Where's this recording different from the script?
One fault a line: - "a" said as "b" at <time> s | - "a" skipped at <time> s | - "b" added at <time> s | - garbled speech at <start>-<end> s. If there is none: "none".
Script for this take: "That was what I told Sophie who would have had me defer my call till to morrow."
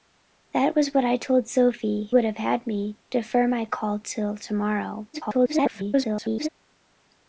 - "who" skipped at 2.1 s
- garbled speech at 5.1-6.5 s